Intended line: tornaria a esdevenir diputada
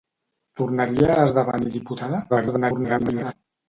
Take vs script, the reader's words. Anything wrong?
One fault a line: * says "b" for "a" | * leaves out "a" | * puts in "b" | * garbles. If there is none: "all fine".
* garbles